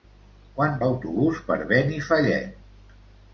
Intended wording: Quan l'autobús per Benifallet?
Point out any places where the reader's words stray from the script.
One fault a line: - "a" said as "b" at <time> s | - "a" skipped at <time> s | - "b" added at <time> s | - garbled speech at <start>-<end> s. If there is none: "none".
none